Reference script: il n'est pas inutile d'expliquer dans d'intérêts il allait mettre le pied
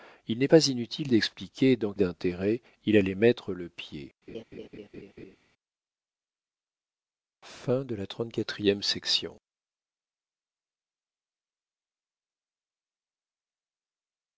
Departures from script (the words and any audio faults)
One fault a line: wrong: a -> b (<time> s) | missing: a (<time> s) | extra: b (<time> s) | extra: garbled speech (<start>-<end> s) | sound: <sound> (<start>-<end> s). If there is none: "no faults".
sound: laugh (4.3-5.4 s)